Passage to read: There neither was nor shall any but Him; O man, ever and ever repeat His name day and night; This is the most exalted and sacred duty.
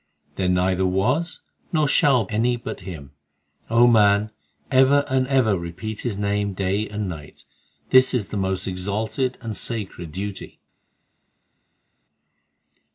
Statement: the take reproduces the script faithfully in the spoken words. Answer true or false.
true